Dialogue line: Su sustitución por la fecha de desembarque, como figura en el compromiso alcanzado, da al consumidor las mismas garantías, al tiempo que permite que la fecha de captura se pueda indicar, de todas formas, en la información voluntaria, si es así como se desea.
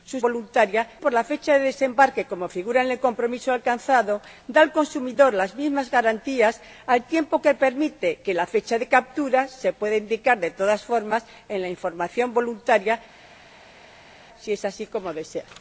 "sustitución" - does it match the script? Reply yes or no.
no